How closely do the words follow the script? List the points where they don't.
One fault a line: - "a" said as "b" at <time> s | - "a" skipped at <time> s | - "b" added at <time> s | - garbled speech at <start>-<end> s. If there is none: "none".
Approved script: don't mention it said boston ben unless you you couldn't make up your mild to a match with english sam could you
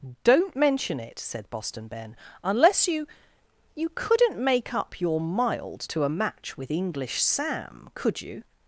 none